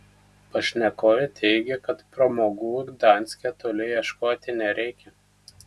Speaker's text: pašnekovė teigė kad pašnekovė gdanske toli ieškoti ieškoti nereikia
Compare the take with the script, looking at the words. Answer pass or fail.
fail